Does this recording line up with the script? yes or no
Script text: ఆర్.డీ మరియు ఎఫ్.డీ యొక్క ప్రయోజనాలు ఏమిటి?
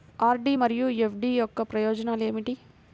yes